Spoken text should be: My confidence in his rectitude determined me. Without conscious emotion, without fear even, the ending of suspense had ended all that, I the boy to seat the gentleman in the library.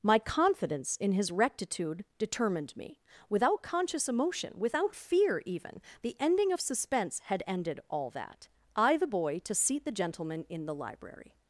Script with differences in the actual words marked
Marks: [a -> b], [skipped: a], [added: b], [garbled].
My confidence in his rectitude determined me. Without conscious emotion, without fear even, the ending of suspense had ended all that, I the boy to seat the gentleman in the library.